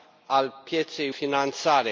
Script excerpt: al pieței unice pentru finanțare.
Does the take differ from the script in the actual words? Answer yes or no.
yes